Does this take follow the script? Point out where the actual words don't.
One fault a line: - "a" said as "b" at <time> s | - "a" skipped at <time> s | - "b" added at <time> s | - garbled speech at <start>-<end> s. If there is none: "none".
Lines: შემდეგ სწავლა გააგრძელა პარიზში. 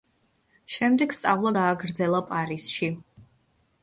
none